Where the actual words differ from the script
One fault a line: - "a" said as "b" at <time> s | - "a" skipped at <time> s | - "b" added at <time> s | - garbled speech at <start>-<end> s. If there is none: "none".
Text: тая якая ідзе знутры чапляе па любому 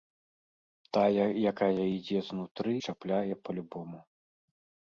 none